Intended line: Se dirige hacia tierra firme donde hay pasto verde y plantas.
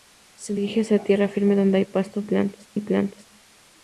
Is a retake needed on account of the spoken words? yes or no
yes